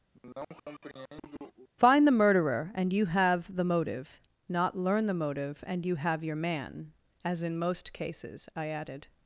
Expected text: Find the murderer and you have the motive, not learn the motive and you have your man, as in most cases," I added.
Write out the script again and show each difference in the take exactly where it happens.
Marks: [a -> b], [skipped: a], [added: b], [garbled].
Find the murderer and you have the motive, not learn the motive and you have your man, as in most cases," I added.